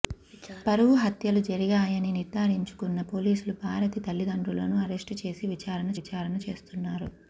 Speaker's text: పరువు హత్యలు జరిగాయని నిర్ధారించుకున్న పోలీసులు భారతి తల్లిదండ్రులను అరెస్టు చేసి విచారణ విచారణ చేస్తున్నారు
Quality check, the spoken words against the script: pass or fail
pass